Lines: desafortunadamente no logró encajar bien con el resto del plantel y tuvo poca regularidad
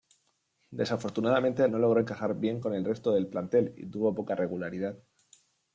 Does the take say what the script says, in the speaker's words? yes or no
yes